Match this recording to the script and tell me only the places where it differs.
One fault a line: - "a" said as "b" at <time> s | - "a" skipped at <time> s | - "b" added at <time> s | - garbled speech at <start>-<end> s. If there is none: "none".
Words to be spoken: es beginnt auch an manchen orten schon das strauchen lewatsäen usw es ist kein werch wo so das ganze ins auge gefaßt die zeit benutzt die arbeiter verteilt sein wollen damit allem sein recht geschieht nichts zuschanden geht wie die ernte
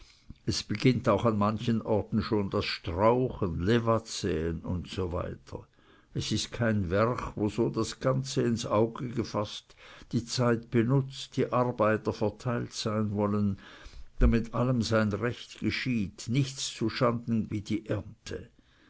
- "geht" skipped at 17.5 s